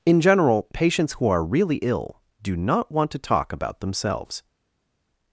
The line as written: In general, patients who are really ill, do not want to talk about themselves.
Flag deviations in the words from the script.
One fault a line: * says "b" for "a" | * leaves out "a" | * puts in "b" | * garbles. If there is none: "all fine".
all fine